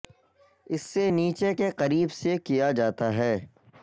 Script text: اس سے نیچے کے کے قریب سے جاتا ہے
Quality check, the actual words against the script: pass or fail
fail